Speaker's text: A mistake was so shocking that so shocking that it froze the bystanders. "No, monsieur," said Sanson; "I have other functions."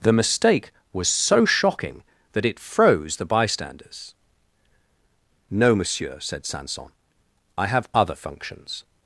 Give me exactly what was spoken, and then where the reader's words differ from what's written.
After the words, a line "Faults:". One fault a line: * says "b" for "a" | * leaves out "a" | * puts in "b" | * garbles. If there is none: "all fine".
The mistake was so shocking that it froze the bystanders. "No, monsieur," said Sanson; "I have other functions."
Faults:
* says "The" for "A"
* leaves out "so shocking that"